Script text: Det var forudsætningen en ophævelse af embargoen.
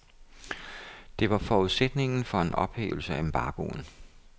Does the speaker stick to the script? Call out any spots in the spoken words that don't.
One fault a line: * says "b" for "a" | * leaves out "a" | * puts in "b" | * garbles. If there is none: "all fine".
* puts in "for"